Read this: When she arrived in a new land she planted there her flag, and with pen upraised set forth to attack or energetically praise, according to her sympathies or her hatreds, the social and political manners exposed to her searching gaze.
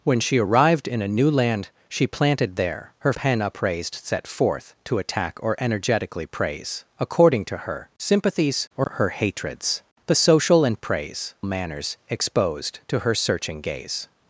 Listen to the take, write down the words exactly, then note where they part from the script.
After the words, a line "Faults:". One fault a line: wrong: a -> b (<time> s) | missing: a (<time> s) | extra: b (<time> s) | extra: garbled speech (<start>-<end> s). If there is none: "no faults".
When she arrived in a new land she planted there her pen upraised set forth to attack or energetically praise, according to her sympathies or her hatreds, the social and praise manners exposed to her searching gaze.
Faults:
missing: flag and with (3.1 s)
wrong: political -> praise (10.8 s)